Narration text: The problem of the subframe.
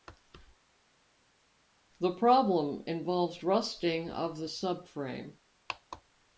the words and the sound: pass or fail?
fail